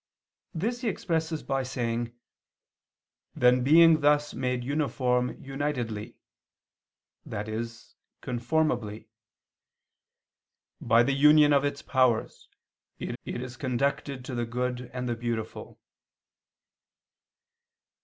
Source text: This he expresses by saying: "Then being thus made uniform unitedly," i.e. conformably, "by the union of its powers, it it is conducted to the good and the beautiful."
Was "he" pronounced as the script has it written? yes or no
yes